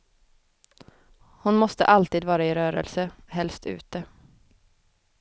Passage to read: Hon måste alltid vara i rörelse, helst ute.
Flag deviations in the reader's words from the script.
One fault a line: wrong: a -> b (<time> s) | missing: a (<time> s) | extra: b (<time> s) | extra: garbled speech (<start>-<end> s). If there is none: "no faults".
no faults